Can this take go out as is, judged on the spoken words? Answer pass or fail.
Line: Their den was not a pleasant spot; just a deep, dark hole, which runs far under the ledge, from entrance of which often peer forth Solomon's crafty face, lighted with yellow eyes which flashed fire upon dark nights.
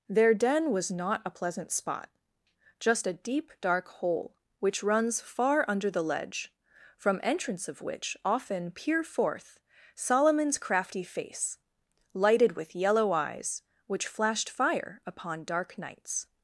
pass